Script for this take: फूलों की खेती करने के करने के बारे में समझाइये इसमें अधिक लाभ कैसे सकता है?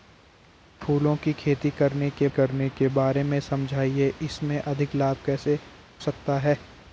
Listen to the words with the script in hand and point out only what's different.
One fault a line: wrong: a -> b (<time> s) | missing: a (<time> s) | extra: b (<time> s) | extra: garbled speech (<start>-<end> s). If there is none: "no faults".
no faults